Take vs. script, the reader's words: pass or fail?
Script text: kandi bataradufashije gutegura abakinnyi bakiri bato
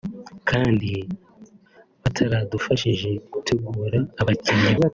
fail